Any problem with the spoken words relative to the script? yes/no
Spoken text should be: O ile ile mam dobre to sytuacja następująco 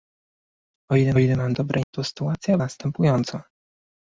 no